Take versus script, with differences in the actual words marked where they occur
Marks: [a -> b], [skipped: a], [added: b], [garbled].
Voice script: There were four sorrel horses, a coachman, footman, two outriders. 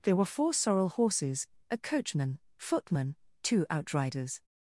There were four sorrel horses, a coachman, footman, two outriders.